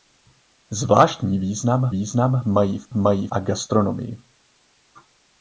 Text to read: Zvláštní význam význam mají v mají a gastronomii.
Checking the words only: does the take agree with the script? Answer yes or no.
yes